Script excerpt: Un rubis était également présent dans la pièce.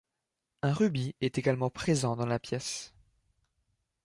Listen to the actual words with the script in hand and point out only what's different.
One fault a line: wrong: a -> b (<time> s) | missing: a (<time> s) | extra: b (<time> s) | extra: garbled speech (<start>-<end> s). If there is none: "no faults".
wrong: était -> est (1.2 s)